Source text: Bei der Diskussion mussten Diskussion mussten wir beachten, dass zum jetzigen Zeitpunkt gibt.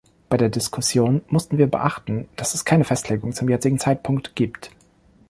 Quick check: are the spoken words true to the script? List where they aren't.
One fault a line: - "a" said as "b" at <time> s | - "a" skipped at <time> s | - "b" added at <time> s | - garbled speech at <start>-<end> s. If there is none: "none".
- "Diskussion mussten" skipped at 1.6 s
- "es keine Festlegung" added at 2.5 s